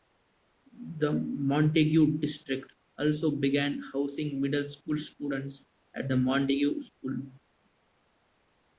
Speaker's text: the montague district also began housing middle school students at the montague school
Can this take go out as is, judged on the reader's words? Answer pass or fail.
pass